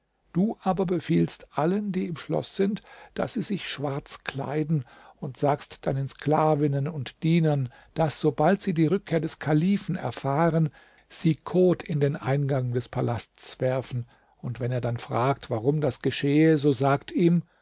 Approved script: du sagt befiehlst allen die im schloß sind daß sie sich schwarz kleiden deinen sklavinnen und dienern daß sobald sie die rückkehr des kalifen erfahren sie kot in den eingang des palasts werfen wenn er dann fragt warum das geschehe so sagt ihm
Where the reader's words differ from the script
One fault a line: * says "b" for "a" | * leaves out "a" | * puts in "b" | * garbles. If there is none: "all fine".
* says "aber" for "sagt"
* puts in "und sagst"
* puts in "und"